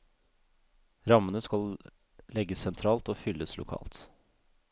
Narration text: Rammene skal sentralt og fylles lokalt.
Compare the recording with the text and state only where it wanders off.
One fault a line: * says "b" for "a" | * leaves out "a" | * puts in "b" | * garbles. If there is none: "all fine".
* puts in "legges"